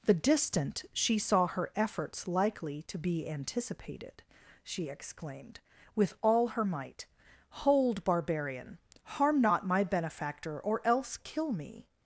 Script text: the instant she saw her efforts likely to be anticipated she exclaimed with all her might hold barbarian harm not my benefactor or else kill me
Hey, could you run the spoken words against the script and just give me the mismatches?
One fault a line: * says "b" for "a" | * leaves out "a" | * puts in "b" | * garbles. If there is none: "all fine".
* says "distant" for "instant"